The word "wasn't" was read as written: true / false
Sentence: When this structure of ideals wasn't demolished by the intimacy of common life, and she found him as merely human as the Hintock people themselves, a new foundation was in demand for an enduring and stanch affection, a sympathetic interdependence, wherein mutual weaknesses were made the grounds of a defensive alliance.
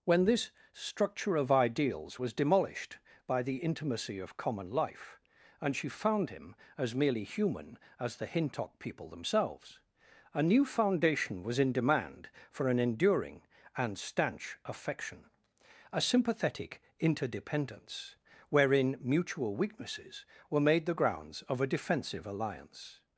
false